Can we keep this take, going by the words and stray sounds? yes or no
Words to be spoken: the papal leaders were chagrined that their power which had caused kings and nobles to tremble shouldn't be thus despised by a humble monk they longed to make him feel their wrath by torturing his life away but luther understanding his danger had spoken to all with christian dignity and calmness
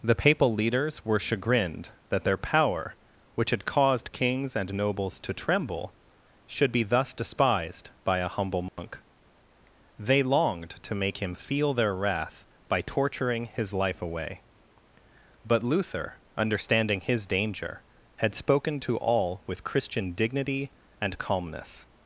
no